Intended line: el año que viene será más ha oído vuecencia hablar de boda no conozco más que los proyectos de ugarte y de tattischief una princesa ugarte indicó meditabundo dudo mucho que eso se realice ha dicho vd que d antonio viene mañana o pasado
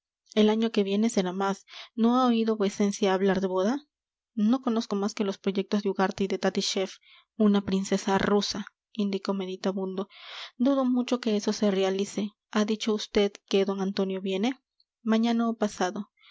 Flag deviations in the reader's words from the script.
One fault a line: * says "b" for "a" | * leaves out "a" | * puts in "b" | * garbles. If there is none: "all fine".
* puts in "no"
* says "rusa" for "ugarte"